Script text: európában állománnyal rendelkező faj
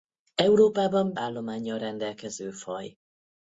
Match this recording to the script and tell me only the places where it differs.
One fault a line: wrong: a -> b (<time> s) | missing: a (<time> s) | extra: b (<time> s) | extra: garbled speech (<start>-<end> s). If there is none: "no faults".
no faults